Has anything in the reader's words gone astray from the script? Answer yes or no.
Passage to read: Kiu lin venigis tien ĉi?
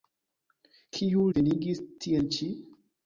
yes